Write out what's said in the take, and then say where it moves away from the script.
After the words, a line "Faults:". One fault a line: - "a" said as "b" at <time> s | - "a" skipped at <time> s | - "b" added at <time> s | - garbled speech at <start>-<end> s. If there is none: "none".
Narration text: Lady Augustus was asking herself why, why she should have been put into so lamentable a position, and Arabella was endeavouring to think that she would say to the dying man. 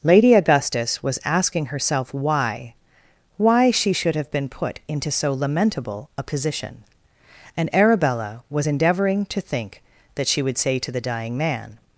Lady Augustus was asking herself why, why she should have been put into so lamentable a position, and Arabella was endeavouring to think that she would say to the dying man.
Faults:
none